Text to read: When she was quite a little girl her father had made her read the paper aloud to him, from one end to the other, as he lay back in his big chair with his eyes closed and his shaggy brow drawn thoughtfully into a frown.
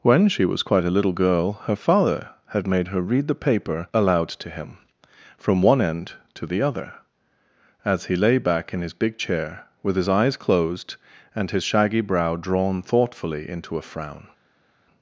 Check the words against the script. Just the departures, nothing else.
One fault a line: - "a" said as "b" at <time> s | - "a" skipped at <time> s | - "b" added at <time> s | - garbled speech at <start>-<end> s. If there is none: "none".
none